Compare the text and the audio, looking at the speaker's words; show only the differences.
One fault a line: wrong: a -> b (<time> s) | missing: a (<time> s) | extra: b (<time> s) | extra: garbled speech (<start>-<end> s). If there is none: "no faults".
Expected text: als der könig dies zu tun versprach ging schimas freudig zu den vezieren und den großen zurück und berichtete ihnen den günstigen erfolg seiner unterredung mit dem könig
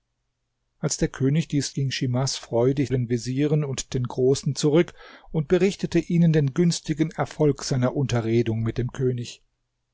missing: zu tun versprach (1.8 s)
missing: zu (2.9 s)